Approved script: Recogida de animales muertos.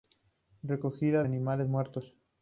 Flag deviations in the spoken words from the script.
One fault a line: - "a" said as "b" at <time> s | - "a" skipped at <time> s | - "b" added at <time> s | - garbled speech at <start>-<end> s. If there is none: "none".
- "de" skipped at 1.2 s